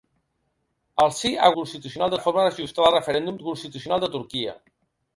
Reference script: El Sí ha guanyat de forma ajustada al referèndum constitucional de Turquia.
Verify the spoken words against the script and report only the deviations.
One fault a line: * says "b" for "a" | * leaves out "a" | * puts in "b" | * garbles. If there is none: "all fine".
* says "constitucional" for "guanyat"